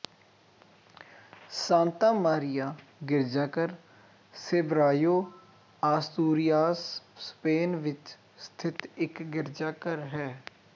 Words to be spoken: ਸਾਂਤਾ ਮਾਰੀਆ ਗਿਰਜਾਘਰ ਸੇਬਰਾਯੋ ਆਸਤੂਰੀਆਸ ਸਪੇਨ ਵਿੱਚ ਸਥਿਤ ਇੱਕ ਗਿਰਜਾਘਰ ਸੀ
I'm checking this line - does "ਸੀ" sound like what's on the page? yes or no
no